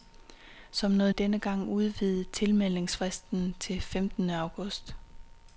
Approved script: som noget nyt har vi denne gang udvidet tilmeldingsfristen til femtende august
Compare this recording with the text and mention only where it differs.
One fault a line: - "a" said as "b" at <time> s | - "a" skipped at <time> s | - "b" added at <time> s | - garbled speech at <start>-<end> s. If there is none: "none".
- "nyt har vi" skipped at 1.1 s